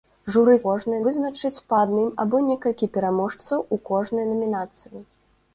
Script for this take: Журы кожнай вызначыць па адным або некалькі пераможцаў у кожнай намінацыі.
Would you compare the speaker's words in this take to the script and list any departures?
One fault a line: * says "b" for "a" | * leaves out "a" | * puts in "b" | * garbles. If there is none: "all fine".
all fine